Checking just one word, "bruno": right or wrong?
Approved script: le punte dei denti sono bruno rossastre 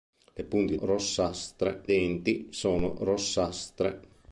wrong